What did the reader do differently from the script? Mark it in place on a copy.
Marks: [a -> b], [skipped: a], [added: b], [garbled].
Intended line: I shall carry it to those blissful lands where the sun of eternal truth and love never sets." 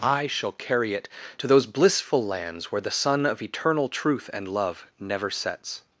I shall carry it to those blissful lands where the sun of eternal truth and love never sets."